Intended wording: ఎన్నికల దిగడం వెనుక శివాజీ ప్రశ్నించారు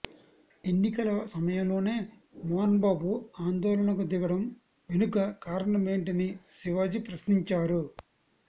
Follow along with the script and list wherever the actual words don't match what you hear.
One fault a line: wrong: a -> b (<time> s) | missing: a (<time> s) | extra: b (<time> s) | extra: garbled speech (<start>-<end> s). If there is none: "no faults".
extra: సమయంలోనే మోహన్బాబు ఆందోళనకు (1.3 s)
extra: కారణమేంటని (5.4 s)